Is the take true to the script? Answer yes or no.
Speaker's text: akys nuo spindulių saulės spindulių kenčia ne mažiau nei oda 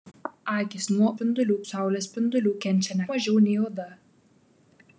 yes